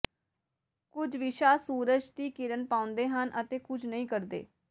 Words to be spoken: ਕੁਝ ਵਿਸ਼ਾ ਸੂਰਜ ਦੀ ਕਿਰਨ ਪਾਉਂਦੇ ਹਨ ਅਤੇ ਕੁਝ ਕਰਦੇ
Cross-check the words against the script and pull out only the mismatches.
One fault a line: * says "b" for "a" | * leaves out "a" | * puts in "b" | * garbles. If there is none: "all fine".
* puts in "ਨਹੀਂ"